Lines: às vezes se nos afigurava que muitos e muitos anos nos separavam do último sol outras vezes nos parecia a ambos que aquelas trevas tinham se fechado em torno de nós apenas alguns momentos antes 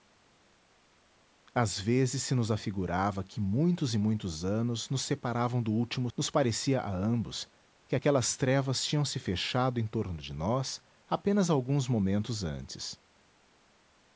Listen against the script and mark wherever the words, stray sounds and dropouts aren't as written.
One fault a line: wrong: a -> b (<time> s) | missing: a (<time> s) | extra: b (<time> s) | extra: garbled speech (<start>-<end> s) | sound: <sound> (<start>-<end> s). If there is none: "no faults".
missing: sol outras vezes (6.1 s)